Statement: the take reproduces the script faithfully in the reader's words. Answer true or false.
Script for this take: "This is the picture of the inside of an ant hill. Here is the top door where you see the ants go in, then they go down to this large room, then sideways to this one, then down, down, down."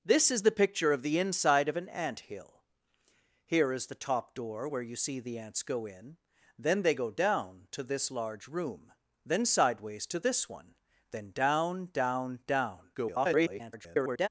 false